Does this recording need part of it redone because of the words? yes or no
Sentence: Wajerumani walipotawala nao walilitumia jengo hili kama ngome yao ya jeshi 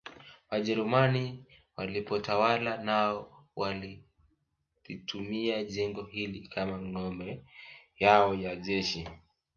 no